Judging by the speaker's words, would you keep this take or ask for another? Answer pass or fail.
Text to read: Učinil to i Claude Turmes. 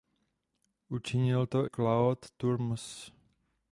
fail